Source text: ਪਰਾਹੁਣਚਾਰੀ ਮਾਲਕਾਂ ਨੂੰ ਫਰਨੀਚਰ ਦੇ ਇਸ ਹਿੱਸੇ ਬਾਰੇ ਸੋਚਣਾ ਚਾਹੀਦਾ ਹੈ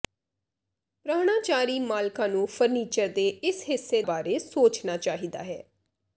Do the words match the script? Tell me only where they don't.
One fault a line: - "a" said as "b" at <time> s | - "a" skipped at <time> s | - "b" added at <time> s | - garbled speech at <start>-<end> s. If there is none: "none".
none